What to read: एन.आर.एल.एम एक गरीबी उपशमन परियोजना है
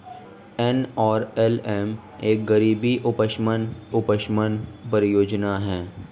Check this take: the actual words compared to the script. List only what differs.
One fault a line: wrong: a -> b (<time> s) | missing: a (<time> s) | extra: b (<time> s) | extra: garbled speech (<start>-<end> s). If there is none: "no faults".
extra: उपशमन (3.9 s)